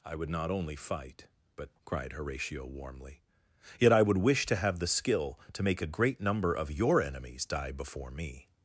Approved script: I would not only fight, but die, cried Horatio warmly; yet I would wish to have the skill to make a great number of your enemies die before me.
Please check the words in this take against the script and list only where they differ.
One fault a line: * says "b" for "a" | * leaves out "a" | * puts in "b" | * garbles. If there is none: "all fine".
* leaves out "die"